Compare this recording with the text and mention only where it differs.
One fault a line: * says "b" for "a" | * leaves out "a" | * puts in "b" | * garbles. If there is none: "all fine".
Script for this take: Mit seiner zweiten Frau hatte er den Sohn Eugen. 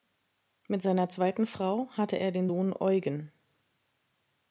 all fine